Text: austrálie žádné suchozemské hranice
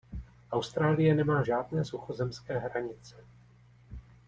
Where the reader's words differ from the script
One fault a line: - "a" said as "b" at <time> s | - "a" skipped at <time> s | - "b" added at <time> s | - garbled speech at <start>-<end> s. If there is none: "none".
- "nemá" added at 1.1 s